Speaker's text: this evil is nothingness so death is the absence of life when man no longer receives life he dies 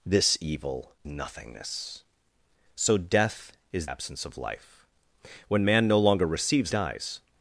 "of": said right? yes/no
yes